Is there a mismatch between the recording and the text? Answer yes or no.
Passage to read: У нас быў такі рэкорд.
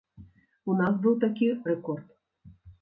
no